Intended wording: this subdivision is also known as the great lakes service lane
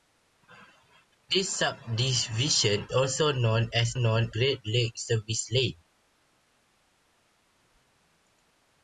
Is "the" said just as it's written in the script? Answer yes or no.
no